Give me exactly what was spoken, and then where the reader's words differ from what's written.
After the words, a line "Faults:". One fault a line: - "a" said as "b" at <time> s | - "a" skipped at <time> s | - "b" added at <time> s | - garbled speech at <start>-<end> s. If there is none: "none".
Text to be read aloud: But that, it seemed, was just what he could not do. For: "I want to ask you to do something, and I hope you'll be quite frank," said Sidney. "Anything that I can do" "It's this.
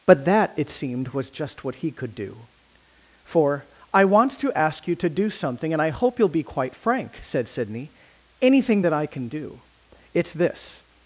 But that, it seemed, was just what he could do. For: "I want to ask you to do something, and I hope you'll be quite frank," said Sidney. "Anything that I can do" "It's this.
Faults:
- "not" skipped at 2.1 s